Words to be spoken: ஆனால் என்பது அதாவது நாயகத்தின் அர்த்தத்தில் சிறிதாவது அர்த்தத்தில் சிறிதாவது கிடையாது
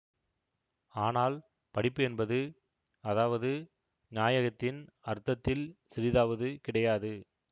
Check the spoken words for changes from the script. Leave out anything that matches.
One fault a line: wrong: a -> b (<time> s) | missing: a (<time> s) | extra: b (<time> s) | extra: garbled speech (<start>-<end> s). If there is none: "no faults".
extra: படிப்பு (1.8 s)
missing: அர்த்தத்தில் சிறிதாவது (6.5 s)